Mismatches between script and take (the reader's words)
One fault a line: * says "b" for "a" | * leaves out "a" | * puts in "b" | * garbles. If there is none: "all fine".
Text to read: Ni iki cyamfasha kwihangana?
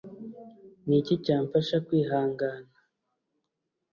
all fine